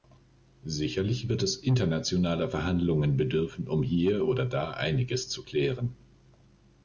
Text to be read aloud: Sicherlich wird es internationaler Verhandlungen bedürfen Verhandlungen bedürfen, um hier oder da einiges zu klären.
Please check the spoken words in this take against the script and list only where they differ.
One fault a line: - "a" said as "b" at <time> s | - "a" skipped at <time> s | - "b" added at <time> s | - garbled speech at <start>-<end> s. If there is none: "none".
- "Verhandlungen bedürfen" skipped at 3.7 s